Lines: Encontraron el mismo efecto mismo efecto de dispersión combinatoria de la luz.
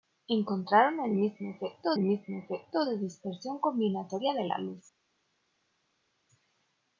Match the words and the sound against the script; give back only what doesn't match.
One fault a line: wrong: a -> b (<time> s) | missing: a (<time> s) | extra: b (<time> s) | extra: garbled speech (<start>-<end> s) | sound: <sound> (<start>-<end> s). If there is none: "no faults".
no faults